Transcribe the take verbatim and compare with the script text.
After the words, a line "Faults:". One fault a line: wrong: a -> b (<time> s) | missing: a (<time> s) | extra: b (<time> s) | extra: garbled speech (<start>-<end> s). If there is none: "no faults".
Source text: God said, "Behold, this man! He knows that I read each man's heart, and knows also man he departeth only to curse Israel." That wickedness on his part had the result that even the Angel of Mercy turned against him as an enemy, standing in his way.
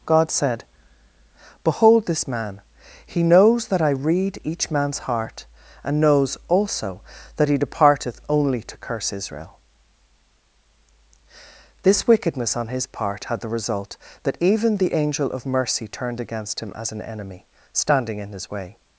God said, "Behold, this man! He knows that I read each man's heart, and knows also that he departeth only to curse Israel." This wickedness on his part had the result that even the Angel of Mercy turned against him as an enemy, standing in his way.
Faults:
wrong: man -> that (7.4 s)
wrong: That -> This (11.8 s)